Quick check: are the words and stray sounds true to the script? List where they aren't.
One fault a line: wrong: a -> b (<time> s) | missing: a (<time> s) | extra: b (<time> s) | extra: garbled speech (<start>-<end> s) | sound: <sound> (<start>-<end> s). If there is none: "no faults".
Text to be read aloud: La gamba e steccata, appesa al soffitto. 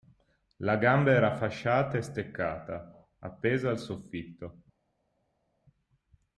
extra: era fasciata (1.1 s)